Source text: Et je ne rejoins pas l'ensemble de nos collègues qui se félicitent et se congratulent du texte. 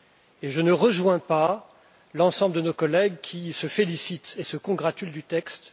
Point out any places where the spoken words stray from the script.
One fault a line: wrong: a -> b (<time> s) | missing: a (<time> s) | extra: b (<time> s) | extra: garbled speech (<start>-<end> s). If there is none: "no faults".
no faults